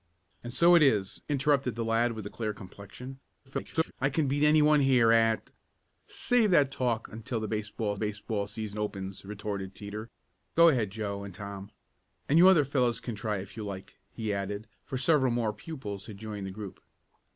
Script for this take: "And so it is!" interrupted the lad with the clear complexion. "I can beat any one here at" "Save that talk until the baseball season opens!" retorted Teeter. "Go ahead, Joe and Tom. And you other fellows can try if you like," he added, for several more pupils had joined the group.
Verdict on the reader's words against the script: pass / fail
fail